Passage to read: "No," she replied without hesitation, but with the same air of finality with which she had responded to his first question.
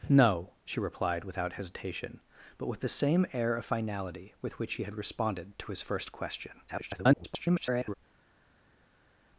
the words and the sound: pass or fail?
fail